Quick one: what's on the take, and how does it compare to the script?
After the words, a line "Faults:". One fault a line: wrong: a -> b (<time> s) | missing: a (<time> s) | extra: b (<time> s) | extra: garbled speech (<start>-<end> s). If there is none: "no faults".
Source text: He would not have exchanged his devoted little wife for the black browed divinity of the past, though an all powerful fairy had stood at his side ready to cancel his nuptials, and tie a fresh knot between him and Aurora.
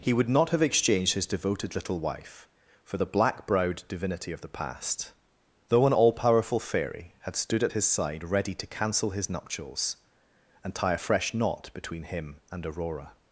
He would not have exchanged his devoted little wife for the black browed divinity of the past, though an all powerful fairy had stood at his side ready to cancel his nuptials, and tie a fresh knot between him and Aurora.
Faults:
no faults